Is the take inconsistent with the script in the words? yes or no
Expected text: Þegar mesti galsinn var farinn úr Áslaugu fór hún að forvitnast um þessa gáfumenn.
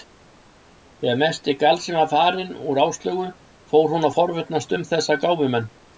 no